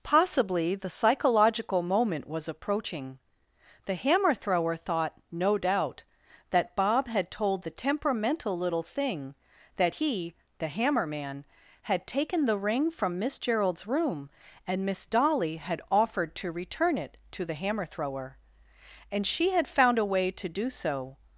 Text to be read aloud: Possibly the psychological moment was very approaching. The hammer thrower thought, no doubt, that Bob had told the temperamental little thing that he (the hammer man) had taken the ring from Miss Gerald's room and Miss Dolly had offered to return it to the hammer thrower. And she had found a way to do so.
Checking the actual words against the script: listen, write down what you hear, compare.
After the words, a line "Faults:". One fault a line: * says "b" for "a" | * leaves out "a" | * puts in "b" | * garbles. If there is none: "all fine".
Possibly the psychological moment was approaching. The hammer thrower thought, no doubt, that Bob had told the temperamental little thing that he (the hammer man) had taken the ring from Miss Gerald's room and Miss Dolly had offered to return it to the hammer thrower. And she had found a way to do so.
Faults:
* leaves out "very"